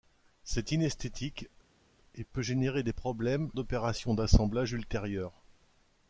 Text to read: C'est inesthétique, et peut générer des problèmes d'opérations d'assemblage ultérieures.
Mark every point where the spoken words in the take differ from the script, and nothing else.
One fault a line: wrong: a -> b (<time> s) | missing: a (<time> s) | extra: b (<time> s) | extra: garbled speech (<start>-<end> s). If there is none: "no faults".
no faults